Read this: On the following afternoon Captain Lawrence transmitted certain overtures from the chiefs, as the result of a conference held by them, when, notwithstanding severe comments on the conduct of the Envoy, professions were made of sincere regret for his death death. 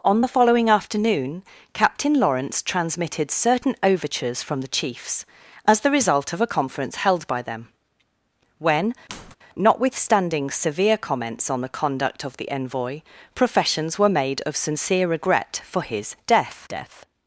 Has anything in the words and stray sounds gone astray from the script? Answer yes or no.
yes